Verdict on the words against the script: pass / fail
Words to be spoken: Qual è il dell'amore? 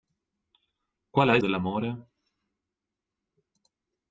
pass